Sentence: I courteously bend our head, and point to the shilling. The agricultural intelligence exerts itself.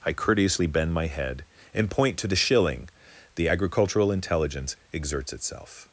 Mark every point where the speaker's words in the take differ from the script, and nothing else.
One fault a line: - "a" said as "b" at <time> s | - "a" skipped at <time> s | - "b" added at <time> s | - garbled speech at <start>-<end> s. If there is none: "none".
- "our" said as "my" at 0.9 s